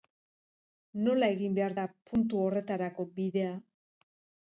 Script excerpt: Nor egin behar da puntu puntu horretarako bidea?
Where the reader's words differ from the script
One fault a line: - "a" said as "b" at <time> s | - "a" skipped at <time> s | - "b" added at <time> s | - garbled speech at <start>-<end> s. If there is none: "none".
- "Nor" said as "Nola" at 1.1 s
- "puntu" skipped at 2.5 s